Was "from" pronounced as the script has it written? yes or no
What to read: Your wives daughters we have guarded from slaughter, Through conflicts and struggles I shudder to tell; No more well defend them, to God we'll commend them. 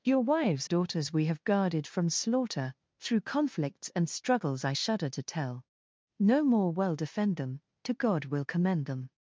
yes